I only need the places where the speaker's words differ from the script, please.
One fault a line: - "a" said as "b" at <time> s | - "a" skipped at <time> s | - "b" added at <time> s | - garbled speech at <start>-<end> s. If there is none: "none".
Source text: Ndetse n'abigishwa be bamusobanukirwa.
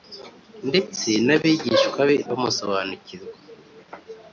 none